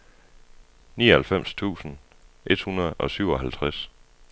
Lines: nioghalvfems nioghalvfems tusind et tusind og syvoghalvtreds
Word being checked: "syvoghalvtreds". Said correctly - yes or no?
yes